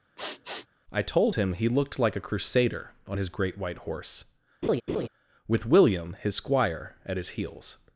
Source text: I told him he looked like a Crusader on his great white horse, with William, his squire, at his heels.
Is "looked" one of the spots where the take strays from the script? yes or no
no